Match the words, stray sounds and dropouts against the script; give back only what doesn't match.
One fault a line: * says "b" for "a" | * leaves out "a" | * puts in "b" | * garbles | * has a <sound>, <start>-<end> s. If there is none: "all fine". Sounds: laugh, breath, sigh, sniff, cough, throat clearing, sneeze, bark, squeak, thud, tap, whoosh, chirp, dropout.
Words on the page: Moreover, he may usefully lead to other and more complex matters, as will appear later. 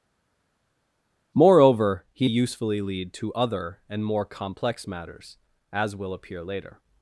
* leaves out "may"